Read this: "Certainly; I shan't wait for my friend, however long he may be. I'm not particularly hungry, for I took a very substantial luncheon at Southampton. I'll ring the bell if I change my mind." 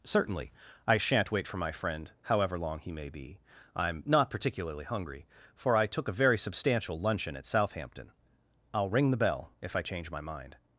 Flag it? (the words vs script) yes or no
no